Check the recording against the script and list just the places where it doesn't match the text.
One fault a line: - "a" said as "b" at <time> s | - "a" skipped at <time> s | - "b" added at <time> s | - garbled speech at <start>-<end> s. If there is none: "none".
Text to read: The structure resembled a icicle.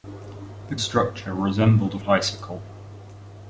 none